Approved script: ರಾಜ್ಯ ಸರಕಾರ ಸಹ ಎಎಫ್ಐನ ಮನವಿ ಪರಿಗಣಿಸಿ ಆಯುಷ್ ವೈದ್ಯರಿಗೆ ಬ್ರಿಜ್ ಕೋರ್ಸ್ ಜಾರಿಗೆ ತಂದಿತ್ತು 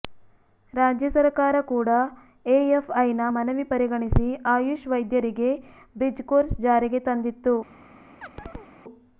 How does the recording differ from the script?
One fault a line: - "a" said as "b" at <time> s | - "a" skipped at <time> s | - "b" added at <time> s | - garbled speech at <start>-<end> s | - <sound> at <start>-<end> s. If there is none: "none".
- "ಸಹ" said as "ಕೂಡ" at 1.7 s
- chirp at 8.2-8.7 s